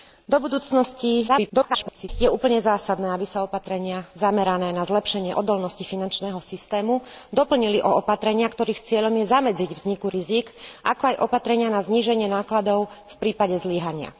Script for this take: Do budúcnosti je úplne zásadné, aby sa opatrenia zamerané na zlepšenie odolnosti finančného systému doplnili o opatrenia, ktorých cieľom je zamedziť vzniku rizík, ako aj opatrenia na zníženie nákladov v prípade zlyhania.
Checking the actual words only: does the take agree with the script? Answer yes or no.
no